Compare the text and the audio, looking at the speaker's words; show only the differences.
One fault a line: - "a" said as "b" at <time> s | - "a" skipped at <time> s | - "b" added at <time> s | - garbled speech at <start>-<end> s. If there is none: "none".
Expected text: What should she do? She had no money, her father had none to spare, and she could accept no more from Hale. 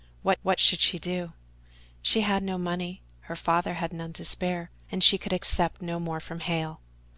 - "what" added at 0.4 s